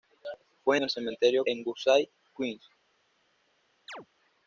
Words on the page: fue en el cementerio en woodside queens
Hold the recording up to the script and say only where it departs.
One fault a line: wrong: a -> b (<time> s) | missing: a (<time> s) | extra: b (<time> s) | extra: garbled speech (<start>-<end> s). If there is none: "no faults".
no faults